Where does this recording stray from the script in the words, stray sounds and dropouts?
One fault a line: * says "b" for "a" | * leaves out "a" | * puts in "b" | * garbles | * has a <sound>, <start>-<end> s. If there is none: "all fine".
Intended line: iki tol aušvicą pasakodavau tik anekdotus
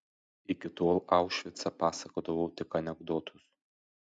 all fine